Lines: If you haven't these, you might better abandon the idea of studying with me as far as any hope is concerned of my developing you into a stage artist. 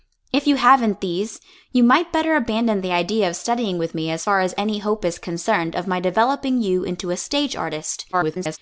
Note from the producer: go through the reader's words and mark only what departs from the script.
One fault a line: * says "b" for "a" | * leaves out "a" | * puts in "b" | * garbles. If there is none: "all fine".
* garbles